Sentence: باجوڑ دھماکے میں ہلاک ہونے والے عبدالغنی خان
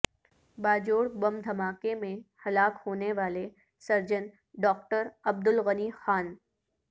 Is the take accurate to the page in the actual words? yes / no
no